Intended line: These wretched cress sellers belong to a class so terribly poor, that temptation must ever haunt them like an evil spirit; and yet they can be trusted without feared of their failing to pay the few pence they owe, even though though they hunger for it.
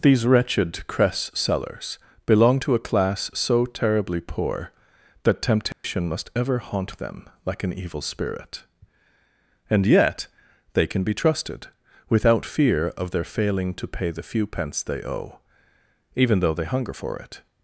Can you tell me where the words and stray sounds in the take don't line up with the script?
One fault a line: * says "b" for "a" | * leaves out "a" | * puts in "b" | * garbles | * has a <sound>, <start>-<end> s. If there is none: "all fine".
* has a dropout, 5.7-5.8 s
* says "fear" for "feared"
* leaves out "though"